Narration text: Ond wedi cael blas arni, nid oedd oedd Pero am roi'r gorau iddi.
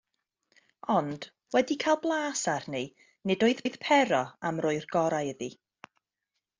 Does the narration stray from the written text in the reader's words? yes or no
no